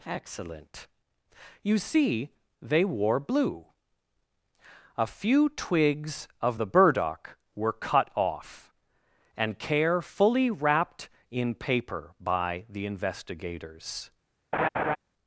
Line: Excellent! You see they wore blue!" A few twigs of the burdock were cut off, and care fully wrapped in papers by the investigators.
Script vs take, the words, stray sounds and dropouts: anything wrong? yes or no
yes